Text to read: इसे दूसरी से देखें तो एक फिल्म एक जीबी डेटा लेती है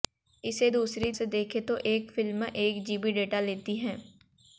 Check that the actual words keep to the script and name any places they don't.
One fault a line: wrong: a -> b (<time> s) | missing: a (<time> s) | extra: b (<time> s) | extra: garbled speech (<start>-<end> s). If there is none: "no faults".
no faults